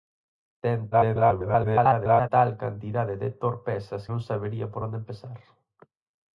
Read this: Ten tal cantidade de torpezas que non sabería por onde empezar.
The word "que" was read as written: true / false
false